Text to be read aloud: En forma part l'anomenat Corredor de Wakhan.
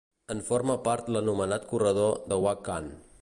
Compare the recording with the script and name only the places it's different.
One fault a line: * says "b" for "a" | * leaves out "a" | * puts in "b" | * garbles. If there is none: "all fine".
all fine